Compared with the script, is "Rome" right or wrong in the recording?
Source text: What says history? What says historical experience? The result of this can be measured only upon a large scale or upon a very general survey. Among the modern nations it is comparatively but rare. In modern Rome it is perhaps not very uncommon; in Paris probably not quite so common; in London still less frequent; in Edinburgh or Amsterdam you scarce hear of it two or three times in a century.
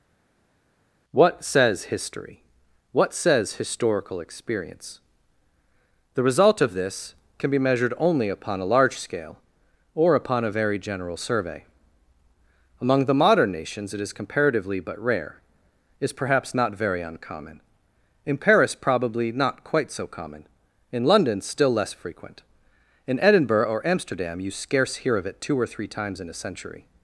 wrong